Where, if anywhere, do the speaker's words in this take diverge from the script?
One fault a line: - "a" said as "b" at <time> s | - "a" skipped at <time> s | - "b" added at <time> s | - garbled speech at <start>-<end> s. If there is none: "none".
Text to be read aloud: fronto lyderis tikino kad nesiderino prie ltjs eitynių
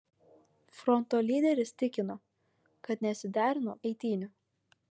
- "prie ltjs" skipped at 3.8 s